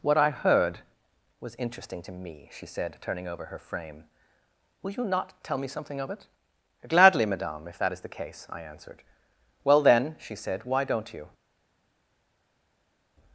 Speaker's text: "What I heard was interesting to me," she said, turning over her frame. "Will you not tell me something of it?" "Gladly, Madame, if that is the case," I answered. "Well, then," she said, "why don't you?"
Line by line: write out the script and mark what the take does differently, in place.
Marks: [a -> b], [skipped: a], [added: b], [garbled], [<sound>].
"What I heard was interesting to me," she said, turning over her frame. "Will you not tell me something of it?" "Gladly, Madame, if that is the case," I answered. "Well, then," she said, "why don't you?"